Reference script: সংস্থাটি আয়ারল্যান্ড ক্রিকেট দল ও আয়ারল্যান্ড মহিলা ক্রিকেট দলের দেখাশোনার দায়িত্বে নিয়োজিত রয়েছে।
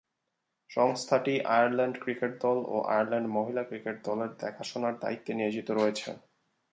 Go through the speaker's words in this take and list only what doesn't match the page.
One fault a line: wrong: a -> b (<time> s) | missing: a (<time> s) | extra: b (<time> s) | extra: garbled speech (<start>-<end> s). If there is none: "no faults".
no faults